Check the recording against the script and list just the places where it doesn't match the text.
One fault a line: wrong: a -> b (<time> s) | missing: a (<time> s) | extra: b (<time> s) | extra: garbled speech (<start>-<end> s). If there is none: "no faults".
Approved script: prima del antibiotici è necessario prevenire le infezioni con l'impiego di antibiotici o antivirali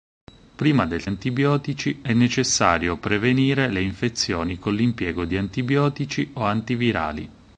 no faults